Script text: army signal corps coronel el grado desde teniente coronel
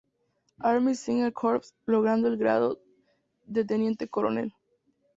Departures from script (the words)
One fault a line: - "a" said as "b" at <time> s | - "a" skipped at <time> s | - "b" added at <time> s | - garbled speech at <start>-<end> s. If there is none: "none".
- "coronel" said as "logrando" at 1.8 s
- "desde" said as "de" at 3.4 s